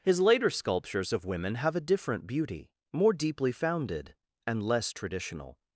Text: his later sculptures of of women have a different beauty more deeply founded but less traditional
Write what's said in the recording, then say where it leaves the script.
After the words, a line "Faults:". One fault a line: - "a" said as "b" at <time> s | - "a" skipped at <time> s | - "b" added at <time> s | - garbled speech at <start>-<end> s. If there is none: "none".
his later sculptures of women have a different beauty more deeply founded and less traditional
Faults:
- "of" skipped at 1.2 s
- "but" said as "and" at 4.5 s